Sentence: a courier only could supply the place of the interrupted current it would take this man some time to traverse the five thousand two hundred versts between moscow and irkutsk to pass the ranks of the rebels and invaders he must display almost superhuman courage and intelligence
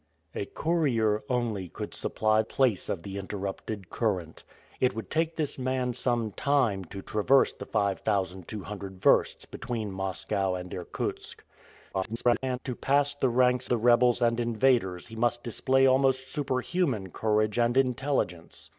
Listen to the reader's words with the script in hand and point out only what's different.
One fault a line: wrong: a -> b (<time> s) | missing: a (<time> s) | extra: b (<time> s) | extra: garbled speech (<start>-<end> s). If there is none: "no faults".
missing: the (2.4 s)
extra: garbled speech (11.9-12.6 s)
missing: of (13.7 s)